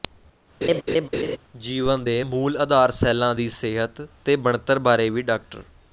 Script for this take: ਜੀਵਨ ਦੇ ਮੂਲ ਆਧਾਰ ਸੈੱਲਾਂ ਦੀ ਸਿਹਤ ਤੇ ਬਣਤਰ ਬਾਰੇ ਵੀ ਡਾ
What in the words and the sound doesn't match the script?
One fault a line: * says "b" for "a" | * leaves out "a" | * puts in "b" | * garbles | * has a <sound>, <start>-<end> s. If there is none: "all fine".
* has a laugh, 0.6-1.4 s